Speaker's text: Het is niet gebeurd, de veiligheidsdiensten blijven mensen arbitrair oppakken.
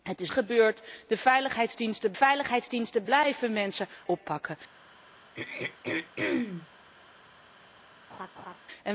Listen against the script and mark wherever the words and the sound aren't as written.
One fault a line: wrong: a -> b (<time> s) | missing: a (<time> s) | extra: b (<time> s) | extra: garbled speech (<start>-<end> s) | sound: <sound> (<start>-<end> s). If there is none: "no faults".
missing: niet (0.3 s)
extra: veiligheidsdiensten (2.1 s)
missing: arbitrair (3.9 s)
sound: throat clearing (5.3-6.7 s)
sound: laugh (8.1-8.6 s)